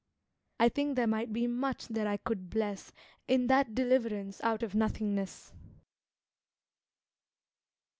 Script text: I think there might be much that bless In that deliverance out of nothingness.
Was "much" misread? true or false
false